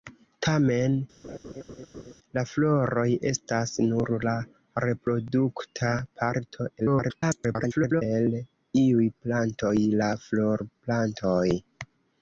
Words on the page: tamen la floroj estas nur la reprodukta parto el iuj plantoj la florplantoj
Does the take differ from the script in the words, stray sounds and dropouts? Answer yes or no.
yes